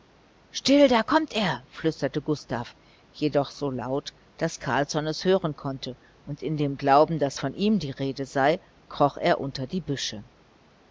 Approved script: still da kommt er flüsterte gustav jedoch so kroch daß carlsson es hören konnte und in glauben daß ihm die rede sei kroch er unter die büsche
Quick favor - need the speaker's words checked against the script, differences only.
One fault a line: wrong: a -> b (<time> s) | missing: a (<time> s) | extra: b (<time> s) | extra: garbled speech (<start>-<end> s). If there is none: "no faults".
wrong: kroch -> laut (3.7 s)
extra: dem (6.6 s)
extra: von (7.4 s)